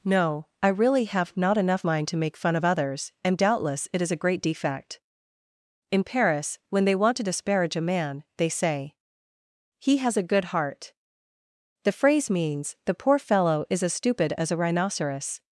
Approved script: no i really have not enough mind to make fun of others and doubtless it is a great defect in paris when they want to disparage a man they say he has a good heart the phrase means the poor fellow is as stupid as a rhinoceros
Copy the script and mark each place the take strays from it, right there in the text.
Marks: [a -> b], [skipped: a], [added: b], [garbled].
no i really have not enough mind to make fun of others and doubtless it is a great defect in paris when they want to disparage a man they say he has a good heart the phrase means the poor fellow is as stupid as a rhinoceros